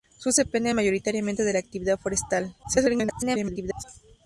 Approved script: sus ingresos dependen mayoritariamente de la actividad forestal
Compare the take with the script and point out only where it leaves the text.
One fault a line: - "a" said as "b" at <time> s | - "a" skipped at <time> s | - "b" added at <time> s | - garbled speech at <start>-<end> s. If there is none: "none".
- "ingresos" skipped at 0.4 s
- garbled speech at 2.6-3.8 s